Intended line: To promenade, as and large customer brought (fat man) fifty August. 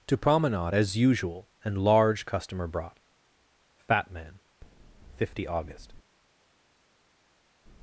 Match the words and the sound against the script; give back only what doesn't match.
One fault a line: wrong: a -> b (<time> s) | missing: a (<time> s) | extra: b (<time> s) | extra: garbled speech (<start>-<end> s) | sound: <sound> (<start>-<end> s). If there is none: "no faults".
extra: usual (1.0 s)